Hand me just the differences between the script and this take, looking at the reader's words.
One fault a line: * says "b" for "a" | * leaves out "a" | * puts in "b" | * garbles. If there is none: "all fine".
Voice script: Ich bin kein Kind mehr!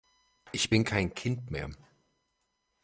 all fine